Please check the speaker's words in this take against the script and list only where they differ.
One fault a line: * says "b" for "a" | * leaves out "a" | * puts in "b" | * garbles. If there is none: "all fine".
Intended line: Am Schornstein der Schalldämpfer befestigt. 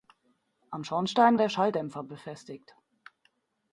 all fine